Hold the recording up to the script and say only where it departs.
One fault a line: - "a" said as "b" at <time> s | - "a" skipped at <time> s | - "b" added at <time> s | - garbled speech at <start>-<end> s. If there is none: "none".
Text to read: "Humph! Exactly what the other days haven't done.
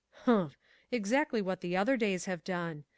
- "haven't" said as "have" at 2.2 s